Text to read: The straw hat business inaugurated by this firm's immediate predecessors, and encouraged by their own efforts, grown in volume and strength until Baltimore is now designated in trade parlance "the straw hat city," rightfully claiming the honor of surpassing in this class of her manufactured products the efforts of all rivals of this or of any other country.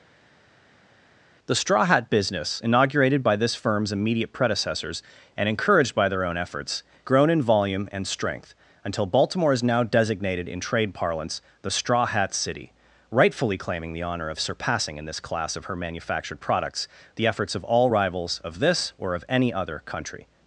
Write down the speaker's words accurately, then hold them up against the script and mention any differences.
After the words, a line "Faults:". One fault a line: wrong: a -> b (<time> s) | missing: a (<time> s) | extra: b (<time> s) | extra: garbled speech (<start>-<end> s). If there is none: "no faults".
The straw hat business inaugurated by this firm's immediate predecessors, and encouraged by their own efforts, grown in volume and strength until Baltimore is now designated in trade parlance "the straw hat city," rightfully claiming the honor of surpassing in this class of her manufactured products the efforts of all rivals of this or of any other country.
Faults:
no faults